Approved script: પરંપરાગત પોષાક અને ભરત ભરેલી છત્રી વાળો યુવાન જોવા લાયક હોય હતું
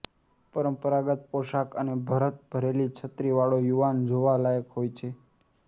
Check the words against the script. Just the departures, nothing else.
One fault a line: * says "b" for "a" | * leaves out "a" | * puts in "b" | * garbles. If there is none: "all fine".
* says "છે" for "હતું"